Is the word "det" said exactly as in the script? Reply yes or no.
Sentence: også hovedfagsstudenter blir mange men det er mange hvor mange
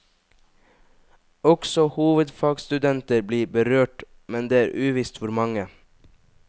yes